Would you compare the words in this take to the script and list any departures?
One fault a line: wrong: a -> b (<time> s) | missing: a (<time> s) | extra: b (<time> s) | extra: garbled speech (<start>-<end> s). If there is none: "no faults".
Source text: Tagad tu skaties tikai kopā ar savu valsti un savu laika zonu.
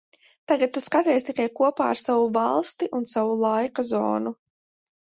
no faults